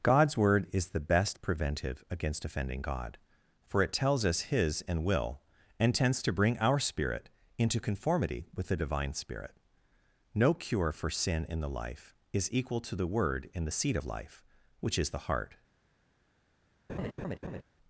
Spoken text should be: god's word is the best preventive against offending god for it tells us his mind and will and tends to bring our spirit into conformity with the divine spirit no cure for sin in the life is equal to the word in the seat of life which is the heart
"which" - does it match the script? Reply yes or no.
yes